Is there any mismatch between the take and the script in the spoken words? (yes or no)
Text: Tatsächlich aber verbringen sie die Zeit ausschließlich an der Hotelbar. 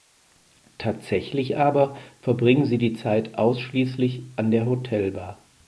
no